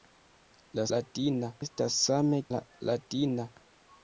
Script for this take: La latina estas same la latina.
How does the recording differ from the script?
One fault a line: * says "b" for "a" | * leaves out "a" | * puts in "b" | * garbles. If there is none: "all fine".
all fine